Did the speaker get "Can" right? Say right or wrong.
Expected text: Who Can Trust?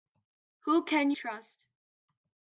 right